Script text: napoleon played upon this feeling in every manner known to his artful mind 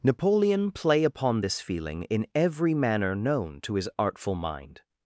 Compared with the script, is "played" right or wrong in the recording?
wrong